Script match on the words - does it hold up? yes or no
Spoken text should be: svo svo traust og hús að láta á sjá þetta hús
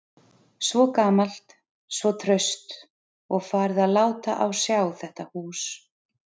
no